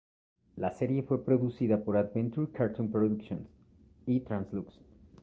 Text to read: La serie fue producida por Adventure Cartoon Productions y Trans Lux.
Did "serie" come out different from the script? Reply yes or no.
no